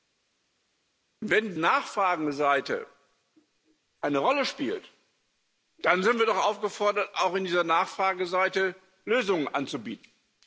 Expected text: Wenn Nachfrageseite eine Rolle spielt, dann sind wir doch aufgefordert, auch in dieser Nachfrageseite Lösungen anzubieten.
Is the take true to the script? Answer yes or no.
yes